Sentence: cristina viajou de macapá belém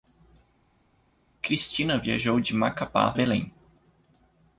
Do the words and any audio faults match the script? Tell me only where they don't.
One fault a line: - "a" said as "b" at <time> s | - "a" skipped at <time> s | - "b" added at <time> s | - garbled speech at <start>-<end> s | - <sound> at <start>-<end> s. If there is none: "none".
none